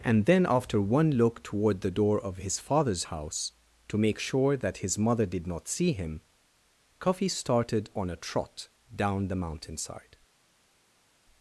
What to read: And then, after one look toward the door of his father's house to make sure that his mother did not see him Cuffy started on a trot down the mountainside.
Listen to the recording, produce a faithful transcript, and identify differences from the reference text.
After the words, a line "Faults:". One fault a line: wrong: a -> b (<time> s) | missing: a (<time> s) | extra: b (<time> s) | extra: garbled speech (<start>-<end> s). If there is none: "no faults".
And then, after one look toward the door of his father's house to make sure that his mother did not see him Cuffy started on a trot down the mountainside.
Faults:
no faults